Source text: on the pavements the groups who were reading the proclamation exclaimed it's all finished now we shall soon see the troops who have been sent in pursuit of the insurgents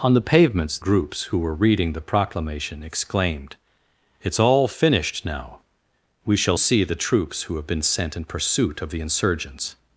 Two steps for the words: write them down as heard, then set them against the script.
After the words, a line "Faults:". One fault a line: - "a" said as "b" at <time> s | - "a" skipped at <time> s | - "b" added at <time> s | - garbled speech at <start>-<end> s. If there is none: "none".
on the pavements groups who were reading the proclamation exclaimed it's all finished now we shall see the troops who have been sent in pursuit of the insurgents
Faults:
- "the" skipped at 0.8 s
- "soon" skipped at 6.6 s